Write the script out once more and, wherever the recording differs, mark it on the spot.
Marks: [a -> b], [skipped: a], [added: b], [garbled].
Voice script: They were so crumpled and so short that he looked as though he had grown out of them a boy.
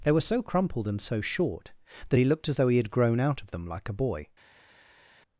They were so crumpled and so short that he looked as though he had grown out of them [added: like] a boy.